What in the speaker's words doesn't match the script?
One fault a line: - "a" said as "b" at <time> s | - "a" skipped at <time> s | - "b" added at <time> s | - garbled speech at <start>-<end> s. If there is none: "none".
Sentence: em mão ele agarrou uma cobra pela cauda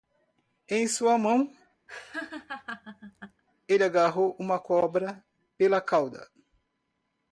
- "sua" added at 0.9 s